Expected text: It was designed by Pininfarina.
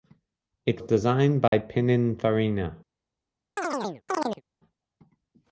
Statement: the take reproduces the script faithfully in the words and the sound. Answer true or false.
false